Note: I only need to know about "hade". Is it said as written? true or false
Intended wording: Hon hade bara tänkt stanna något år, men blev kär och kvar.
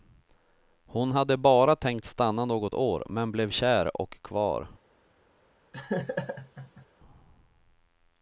true